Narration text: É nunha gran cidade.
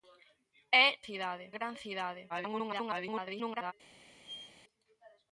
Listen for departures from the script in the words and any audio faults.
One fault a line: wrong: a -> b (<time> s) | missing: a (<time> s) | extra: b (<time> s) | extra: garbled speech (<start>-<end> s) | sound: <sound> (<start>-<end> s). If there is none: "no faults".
wrong: nunha -> cidade (1.1 s)
extra: garbled speech (2.3-3.7 s)
sound: squeak (4.2-4.5 s)